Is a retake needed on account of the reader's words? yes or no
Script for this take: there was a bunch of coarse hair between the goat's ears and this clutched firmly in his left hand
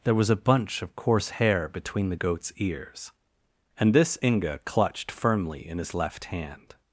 yes